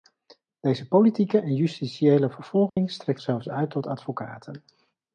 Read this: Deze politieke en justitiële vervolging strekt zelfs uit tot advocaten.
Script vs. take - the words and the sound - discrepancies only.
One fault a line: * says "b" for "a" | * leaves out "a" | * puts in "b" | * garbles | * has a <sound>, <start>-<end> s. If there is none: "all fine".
* has a dropout, 2.7-2.8 s